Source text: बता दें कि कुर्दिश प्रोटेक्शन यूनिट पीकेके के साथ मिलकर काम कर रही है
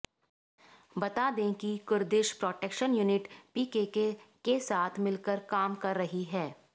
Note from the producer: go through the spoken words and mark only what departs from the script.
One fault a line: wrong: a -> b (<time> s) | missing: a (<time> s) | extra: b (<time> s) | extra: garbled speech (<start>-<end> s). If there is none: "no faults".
no faults